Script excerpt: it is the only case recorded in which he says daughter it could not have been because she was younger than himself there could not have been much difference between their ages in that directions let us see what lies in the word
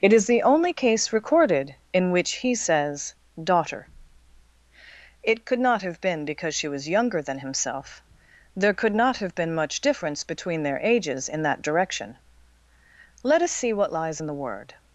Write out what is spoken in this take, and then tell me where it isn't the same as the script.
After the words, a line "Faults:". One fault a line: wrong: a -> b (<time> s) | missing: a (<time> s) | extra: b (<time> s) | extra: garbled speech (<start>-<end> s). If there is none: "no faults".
it is the only case recorded in which he says daughter it could not have been because she was younger than himself there could not have been much difference between their ages in that direction let us see what lies in the word
Faults:
wrong: directions -> direction (11.6 s)